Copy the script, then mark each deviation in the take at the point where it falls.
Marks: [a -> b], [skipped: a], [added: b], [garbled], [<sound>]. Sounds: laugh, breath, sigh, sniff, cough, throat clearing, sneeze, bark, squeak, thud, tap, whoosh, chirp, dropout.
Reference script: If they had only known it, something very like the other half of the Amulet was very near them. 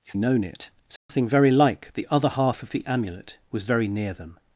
If [skipped: they had only] known it, something [dropout] very like the other half of the Amulet was very near them.